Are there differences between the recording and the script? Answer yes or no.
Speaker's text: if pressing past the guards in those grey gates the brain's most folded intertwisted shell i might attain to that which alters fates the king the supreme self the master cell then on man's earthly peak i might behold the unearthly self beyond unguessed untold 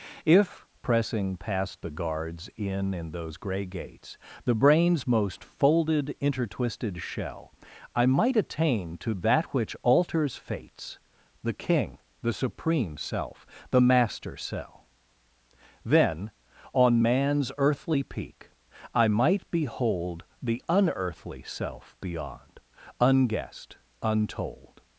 yes